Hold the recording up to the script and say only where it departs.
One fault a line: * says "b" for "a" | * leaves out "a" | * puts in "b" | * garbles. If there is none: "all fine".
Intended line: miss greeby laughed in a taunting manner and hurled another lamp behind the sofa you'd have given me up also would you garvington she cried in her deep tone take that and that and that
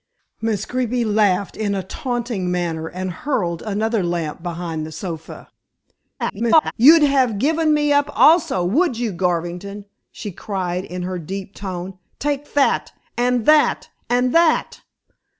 * garbles